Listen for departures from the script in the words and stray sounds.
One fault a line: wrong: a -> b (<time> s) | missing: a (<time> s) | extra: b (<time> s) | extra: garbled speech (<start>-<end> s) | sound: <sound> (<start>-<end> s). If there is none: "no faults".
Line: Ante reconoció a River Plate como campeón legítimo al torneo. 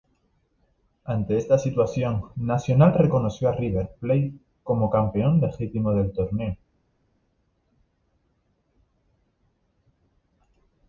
extra: esta situación Nacional (1.3 s)
wrong: al -> del (5.9 s)